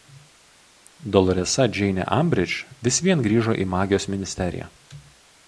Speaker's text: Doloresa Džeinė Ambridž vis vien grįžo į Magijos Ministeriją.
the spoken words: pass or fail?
pass